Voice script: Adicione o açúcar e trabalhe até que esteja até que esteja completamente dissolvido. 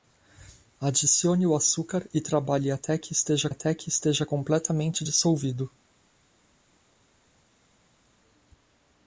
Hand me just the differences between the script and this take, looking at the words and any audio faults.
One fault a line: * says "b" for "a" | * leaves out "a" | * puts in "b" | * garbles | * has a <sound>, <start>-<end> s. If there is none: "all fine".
all fine